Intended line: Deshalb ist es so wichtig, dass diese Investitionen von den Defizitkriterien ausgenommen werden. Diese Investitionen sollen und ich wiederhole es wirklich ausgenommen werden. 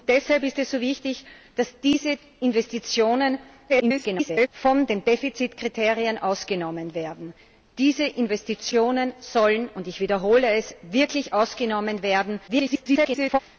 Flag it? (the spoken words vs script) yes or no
yes